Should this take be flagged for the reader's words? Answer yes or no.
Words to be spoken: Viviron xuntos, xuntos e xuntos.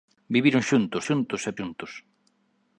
no